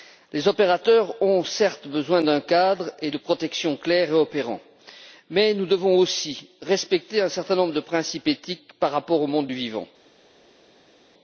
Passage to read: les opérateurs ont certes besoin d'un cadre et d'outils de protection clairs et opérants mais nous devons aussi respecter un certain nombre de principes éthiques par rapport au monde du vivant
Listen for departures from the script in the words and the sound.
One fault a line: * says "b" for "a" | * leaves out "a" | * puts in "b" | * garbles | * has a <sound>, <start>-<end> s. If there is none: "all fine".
* leaves out "d'outils"